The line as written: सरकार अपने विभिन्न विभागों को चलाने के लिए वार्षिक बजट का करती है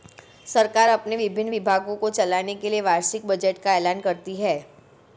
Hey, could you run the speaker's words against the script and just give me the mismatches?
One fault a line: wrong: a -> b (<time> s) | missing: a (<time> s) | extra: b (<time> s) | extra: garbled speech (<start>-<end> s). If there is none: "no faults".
extra: ऐलान (3.7 s)